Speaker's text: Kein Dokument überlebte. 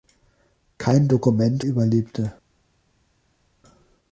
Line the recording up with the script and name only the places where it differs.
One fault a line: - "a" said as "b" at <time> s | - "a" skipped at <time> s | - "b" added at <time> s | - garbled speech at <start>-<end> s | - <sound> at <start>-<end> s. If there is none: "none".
none